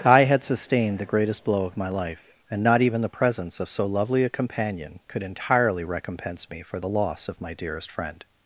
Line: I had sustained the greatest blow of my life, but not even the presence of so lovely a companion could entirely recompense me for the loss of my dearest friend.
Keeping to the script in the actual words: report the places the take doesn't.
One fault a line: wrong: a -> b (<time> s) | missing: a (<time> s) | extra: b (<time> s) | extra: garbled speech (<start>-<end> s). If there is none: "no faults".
wrong: but -> and (2.5 s)